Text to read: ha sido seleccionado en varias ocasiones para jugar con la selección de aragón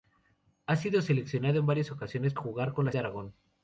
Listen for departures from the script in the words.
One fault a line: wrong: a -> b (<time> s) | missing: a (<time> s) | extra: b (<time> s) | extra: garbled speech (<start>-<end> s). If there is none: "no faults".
missing: para (2.3 s)
missing: selección (2.9 s)